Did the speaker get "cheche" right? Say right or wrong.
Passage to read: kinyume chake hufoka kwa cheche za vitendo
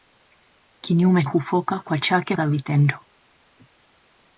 wrong